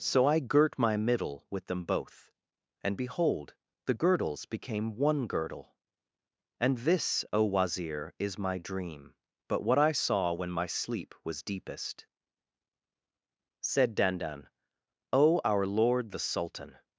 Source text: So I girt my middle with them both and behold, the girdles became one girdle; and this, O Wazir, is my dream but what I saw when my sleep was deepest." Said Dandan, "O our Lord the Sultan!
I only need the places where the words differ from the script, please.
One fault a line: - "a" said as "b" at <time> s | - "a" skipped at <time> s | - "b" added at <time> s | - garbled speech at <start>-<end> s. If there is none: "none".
none